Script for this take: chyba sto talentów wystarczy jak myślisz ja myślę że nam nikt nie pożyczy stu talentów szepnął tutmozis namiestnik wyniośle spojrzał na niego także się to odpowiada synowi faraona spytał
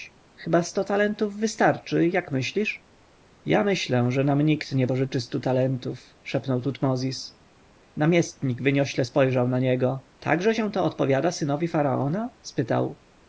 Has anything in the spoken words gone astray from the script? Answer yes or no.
no